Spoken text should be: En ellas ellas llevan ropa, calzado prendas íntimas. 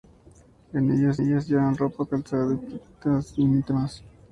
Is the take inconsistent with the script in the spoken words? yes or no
no